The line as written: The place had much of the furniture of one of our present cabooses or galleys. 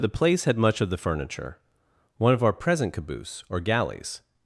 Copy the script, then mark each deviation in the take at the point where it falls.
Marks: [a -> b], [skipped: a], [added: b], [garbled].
The place had much of the furniture [skipped: of] one of our present [cabooses -> caboose] or galleys.